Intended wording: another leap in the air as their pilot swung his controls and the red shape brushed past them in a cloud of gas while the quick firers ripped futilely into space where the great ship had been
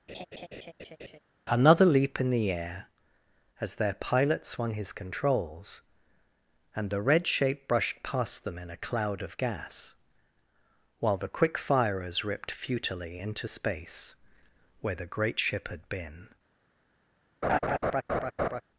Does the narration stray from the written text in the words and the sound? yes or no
yes